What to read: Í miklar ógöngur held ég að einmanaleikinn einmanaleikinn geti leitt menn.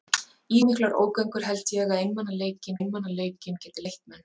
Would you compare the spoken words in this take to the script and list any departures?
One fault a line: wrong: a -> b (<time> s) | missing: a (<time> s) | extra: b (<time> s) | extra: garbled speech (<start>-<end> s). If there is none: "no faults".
no faults